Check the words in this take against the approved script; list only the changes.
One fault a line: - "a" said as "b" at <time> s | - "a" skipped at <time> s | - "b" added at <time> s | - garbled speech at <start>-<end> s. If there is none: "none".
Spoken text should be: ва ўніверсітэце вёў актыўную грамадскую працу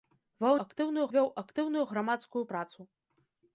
- "ўніверсітэце" said as "актыўную" at 0.6 s